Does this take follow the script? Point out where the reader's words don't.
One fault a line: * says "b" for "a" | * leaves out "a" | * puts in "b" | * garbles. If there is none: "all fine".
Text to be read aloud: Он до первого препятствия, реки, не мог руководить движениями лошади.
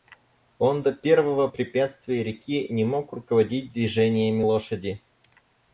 all fine